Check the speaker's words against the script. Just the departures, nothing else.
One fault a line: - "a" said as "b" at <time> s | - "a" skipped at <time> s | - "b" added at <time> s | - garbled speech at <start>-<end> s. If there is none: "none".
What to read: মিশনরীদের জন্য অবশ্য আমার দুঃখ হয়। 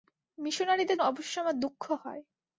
- "জন্য" skipped at 1.0 s